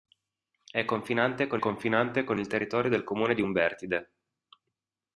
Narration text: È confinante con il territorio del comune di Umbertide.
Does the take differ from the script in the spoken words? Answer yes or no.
yes